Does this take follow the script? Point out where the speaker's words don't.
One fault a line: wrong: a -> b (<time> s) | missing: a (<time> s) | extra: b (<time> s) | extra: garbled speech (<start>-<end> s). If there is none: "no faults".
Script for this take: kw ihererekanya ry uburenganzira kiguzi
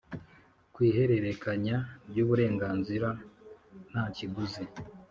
extra: nta (3.9 s)